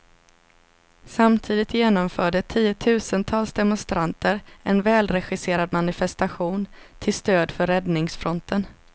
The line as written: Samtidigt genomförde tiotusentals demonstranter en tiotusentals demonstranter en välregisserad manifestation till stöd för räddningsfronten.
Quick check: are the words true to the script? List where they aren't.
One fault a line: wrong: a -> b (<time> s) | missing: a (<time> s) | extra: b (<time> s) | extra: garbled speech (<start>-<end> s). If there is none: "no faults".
missing: tiotusentals demonstranter en (4.8 s)